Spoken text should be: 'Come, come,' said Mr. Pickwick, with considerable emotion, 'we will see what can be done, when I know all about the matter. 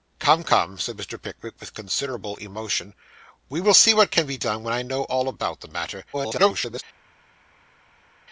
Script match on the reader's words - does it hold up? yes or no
no